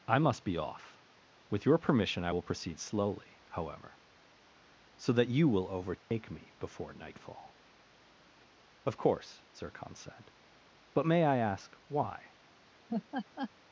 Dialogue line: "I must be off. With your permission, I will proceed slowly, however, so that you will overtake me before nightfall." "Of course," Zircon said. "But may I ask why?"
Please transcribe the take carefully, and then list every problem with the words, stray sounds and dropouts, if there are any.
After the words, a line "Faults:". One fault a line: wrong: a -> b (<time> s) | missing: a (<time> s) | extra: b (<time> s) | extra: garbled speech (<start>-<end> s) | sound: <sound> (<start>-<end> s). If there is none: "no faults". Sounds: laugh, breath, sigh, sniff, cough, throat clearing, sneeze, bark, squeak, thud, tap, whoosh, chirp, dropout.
"I must be off. With your permission, I will proceed slowly, however, so that you will overtake me before nightfall." "Of course," Zircon said. "But may I ask why?"
Faults:
sound: dropout (6.0-6.1 s)
sound: laugh (12.9-13.5 s)